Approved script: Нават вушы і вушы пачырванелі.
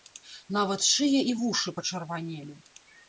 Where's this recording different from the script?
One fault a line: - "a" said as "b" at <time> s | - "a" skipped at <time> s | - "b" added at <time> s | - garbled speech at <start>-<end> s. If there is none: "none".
- "вушы" said as "шыя" at 0.9 s